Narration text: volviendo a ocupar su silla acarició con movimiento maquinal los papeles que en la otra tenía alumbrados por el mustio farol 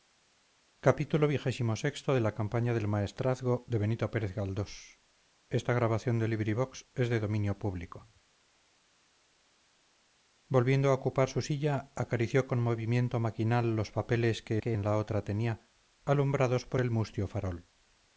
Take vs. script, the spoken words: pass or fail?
fail